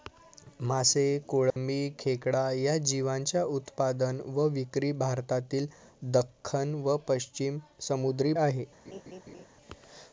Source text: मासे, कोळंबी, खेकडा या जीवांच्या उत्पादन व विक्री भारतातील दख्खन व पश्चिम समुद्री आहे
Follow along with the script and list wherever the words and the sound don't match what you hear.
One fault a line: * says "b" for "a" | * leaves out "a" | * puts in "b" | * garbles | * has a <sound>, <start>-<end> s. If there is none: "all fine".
* has a dropout, 1.5-1.6 s
* has a laugh, 8.8-9.5 s